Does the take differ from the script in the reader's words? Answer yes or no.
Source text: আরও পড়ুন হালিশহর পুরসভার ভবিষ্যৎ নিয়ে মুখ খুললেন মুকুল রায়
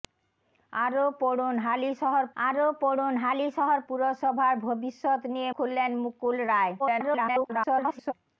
yes